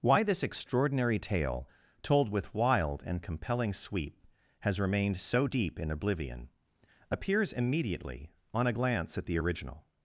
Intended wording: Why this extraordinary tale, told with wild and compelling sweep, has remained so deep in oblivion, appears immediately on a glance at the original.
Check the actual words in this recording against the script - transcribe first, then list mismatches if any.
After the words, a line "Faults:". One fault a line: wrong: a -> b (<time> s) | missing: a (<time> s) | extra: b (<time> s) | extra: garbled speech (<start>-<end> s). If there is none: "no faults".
Why this extraordinary tale, told with wild and compelling sweep, has remained so deep in oblivion, appears immediately on a glance at the original.
Faults:
no faults